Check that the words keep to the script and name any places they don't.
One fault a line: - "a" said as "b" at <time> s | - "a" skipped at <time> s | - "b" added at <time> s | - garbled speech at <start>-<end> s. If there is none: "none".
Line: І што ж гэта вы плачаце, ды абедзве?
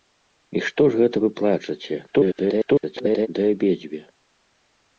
- garbled speech at 2.1-3.3 s